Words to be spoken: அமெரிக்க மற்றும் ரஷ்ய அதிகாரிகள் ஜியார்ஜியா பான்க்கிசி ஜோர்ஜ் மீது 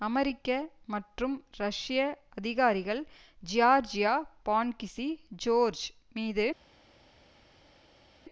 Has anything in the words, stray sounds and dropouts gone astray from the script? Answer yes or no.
no